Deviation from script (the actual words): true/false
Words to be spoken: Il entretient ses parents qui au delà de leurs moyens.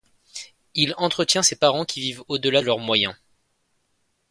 true